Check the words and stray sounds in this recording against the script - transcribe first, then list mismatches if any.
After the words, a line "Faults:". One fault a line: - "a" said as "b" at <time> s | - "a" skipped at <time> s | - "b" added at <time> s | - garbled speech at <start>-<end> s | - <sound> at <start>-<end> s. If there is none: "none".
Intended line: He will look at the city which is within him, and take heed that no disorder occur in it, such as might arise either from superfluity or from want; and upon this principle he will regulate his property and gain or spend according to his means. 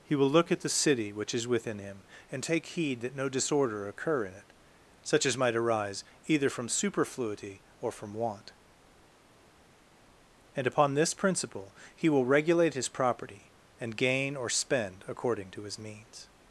He will look at the city which is within him, and take heed that no disorder occur in it, such as might arise either from superfluity or from want; and upon this principle he will regulate his property and gain or spend according to his means.
Faults:
none